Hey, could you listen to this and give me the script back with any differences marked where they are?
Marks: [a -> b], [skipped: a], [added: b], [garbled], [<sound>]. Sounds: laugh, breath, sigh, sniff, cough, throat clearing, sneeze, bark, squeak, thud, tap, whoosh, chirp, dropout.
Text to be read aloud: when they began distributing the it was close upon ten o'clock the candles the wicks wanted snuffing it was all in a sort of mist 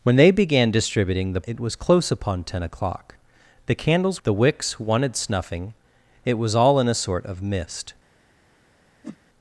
when they began distributing the it was close upon ten o'clock the candles the wicks wanted snuffing it was all in a sort of mist [whoosh]